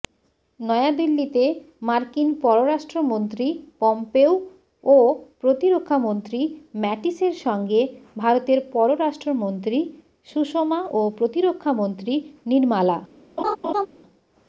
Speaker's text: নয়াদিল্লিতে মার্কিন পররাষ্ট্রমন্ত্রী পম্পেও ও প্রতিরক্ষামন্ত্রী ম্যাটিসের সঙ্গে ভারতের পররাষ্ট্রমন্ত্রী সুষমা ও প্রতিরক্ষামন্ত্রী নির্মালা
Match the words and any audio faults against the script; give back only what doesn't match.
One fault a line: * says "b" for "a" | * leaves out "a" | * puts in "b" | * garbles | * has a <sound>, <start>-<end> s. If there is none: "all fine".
* has a laugh, 13.4-13.9 s